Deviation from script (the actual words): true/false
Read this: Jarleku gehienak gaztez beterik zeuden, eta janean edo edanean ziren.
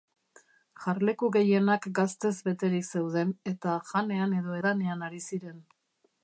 true